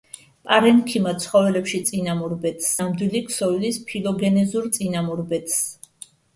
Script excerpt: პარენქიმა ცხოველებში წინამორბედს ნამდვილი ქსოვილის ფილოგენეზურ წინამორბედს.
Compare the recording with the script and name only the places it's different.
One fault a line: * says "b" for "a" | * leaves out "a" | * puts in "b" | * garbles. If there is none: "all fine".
all fine